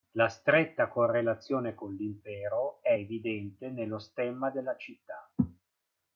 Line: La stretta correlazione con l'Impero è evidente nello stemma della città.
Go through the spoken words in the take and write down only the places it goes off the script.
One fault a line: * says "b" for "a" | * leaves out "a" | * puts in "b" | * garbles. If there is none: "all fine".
all fine